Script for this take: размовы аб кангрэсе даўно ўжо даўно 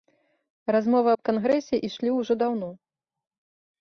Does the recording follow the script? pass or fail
fail